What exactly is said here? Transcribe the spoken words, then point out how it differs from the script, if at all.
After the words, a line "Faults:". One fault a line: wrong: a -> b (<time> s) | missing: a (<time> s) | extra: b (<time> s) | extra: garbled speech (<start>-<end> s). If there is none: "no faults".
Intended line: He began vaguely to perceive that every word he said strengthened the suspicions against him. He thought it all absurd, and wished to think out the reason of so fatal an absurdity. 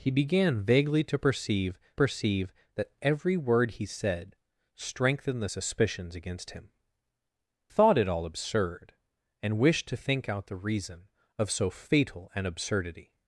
He began vaguely to perceive perceive that every word he said strengthened the suspicions against him. Thought it all absurd, and wished to think out the reason of so fatal an absurdity.
Faults:
extra: perceive (1.9 s)
missing: He (6.7 s)